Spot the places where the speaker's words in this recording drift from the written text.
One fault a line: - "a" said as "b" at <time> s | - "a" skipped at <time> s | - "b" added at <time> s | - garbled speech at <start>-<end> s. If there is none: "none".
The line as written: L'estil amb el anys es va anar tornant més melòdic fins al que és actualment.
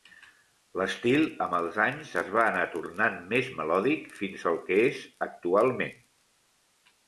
- "el" said as "els" at 1.6 s